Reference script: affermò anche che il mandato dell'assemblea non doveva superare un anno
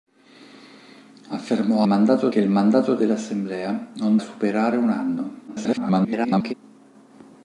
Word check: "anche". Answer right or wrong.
wrong